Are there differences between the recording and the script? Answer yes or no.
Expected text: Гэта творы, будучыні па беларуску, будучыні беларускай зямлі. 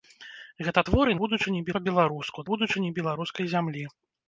no